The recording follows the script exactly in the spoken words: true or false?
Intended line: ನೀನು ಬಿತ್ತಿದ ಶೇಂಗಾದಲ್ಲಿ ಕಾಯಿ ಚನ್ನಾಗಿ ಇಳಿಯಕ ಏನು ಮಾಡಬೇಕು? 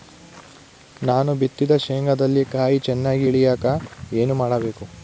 false